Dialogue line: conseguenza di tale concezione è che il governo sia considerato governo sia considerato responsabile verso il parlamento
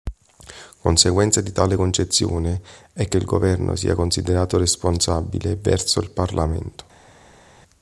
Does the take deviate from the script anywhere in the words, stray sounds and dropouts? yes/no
yes